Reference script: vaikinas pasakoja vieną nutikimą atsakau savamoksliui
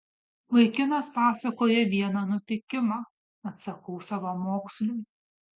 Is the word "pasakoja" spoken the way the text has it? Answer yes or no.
yes